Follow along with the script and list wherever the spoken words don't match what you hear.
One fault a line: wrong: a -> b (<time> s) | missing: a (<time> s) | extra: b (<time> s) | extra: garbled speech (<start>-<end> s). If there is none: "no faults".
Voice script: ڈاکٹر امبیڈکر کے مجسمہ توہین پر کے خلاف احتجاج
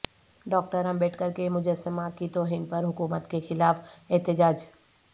extra: کی (2.2 s)
extra: حکومت (2.8 s)